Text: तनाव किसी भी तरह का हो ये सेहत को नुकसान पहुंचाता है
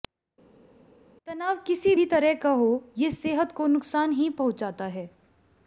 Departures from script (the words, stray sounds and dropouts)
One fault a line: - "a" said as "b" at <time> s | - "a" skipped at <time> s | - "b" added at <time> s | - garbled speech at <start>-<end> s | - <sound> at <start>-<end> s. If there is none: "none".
- "ही" added at 4.1 s